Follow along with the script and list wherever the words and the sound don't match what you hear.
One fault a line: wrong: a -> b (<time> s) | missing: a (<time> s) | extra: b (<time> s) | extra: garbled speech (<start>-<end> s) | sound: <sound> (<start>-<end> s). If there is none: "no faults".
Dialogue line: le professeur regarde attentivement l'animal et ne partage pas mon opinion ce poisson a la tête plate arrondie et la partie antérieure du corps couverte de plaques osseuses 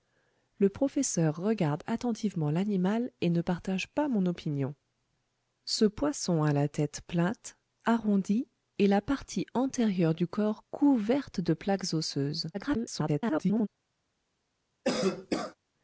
extra: garbled speech (12.5-13.7 s)
sound: cough (14.8-15.6 s)